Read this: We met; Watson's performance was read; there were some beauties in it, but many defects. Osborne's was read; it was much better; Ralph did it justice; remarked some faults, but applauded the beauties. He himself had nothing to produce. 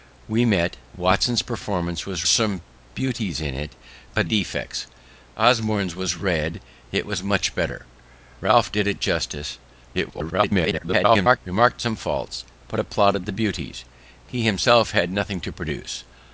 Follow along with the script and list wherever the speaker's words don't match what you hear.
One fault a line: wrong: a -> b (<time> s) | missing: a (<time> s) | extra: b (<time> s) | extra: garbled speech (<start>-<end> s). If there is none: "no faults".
missing: read there were (2.2 s)
missing: many (4.3 s)
extra: garbled speech (9.9-11.4 s)